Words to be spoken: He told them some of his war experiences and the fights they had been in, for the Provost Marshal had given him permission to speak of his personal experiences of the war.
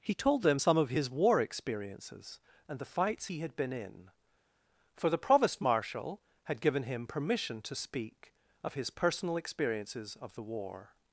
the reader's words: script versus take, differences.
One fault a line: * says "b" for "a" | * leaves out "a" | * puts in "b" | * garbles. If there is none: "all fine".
* says "he" for "they"